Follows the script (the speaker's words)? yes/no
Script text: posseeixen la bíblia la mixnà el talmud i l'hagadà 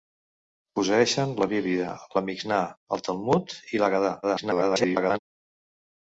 no